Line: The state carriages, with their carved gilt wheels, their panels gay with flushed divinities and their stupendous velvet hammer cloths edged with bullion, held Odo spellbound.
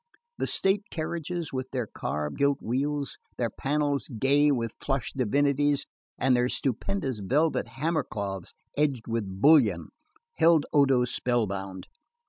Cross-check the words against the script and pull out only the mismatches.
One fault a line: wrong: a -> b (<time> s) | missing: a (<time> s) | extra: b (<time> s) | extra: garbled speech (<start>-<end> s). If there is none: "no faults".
no faults